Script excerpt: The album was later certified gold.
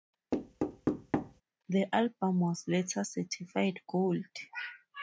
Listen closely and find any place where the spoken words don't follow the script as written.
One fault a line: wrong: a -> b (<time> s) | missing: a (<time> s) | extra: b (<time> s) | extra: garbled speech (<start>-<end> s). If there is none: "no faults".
no faults